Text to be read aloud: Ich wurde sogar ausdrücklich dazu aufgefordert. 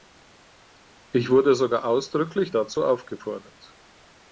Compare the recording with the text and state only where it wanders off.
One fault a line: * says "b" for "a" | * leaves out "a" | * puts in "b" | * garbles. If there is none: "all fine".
all fine